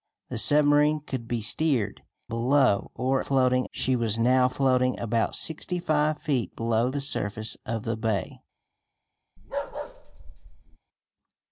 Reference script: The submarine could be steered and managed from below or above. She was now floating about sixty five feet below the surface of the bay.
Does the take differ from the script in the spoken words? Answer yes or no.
yes